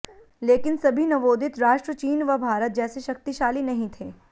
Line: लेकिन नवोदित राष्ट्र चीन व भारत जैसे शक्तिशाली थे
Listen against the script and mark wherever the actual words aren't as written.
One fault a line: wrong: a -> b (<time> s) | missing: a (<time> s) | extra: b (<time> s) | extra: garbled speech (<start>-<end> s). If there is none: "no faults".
extra: सभी (0.8 s)
extra: नहीं (3.6 s)